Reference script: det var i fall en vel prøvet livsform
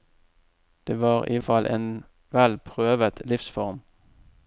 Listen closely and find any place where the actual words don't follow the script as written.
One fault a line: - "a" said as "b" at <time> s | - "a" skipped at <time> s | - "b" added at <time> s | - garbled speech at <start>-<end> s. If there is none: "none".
none